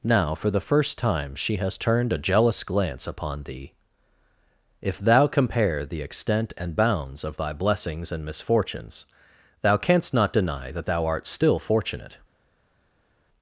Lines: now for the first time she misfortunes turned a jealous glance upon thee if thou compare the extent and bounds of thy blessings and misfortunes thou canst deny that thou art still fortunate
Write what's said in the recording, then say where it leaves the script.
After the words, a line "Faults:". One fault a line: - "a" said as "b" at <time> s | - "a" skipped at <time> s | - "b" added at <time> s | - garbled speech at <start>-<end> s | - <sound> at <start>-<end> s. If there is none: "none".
now for the first time she has turned a jealous glance upon thee if thou compare the extent and bounds of thy blessings and misfortunes thou canst not deny that thou art still fortunate
Faults:
- "misfortunes" said as "has" at 1.6 s
- "not" added at 10.1 s